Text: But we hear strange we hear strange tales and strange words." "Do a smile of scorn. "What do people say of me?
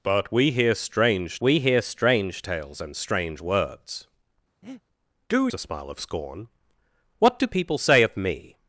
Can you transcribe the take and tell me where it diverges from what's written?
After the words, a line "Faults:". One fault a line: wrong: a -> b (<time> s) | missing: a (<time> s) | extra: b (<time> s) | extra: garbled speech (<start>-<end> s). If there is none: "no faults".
But we hear strange we hear strange tales and strange words." "Do a smile of scorn. "What do people say of me?
Faults:
no faults